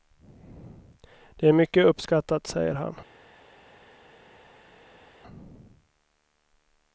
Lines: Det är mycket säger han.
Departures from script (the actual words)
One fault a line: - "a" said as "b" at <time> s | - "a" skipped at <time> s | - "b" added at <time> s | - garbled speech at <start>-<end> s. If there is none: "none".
- "uppskattat" added at 1.9 s